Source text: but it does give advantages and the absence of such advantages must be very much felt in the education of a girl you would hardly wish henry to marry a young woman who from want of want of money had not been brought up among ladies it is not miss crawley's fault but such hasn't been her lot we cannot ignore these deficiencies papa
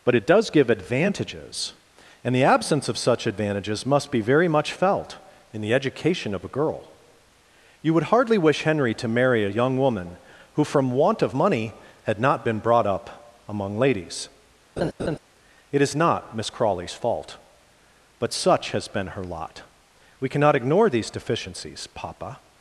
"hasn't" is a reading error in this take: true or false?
true